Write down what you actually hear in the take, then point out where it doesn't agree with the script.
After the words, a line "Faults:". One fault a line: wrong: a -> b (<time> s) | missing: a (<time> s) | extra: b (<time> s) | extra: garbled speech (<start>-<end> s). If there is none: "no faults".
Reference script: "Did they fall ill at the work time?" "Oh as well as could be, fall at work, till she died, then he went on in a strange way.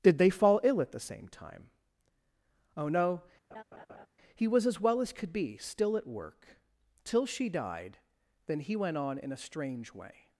"Did they fall ill at the same time?" "Oh no, he was as well as could be, still at work, till she died, then he went on in a strange way.
Faults:
wrong: work -> same (1.0 s)
extra: no he was (2.9 s)
wrong: fall -> still (5.6 s)